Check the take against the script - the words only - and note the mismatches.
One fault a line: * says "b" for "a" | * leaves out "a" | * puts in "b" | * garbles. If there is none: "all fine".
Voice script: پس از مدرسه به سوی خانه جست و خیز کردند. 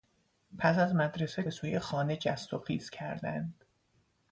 all fine